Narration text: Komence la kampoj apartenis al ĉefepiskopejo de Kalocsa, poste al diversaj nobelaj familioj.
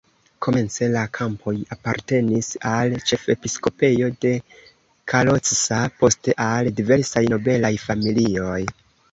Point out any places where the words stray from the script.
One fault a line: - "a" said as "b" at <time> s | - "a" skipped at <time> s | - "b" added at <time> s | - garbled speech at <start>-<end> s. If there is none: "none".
none